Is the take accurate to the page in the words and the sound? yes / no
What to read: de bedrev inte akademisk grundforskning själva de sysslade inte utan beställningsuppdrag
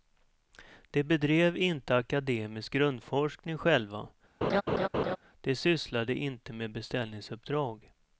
no